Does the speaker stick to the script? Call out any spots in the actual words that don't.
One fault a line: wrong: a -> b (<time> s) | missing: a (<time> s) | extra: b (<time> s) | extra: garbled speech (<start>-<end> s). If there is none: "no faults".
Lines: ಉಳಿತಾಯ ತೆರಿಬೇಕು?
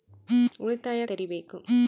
no faults